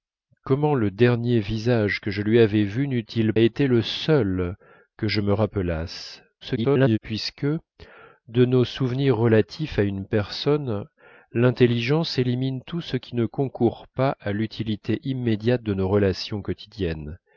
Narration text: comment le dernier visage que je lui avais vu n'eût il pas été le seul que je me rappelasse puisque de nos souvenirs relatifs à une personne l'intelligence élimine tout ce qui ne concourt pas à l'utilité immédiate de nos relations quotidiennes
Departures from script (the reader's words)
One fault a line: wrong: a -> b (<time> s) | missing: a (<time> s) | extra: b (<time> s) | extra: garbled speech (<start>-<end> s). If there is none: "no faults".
missing: pas (3.3 s)
extra: garbled speech (6.4-7.0 s)